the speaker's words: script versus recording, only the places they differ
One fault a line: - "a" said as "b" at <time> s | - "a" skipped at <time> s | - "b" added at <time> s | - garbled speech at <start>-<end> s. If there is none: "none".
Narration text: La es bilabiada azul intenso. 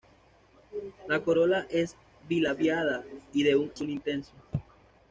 - "corola" added at 1.2 s
- "y de un" added at 3.3 s